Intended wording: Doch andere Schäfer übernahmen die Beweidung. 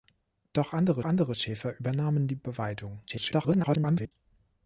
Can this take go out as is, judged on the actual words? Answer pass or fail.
fail